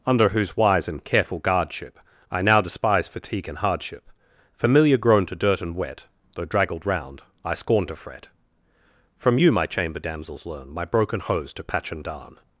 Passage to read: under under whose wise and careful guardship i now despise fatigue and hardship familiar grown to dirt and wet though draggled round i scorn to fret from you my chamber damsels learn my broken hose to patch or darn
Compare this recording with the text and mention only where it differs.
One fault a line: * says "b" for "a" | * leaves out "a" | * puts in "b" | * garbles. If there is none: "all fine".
* leaves out "under"
* says "and" for "or"